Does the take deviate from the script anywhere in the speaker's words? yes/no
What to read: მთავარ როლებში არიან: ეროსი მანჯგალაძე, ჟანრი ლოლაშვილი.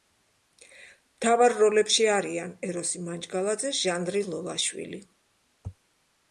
no